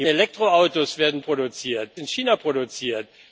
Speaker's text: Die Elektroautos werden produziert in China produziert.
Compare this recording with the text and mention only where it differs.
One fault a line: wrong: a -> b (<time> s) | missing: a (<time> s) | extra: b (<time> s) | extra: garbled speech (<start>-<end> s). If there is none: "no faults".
no faults